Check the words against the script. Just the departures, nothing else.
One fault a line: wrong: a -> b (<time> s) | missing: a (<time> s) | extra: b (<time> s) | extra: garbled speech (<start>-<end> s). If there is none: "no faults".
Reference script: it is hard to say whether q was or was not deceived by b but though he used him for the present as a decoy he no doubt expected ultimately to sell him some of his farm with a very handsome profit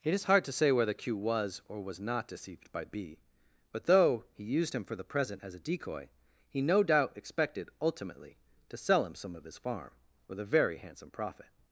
no faults